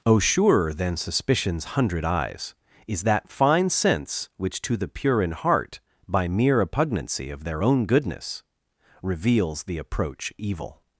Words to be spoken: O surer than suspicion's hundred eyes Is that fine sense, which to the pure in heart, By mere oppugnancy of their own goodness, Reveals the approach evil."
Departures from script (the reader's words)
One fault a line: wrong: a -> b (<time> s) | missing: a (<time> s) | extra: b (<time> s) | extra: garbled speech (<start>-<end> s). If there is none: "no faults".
no faults